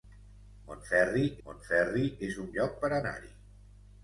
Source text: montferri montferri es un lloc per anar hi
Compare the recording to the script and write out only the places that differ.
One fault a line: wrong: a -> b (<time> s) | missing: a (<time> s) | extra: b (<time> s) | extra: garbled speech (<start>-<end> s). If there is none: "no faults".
no faults